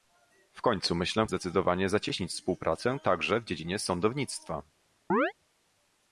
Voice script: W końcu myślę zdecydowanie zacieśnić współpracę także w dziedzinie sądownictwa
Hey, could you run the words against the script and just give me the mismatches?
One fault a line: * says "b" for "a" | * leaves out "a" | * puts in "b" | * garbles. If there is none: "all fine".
all fine